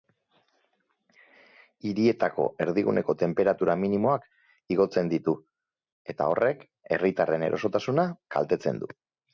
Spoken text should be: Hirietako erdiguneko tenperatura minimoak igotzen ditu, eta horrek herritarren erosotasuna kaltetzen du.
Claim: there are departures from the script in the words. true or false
false